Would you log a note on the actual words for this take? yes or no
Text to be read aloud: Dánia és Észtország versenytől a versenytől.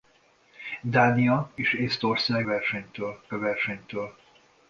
no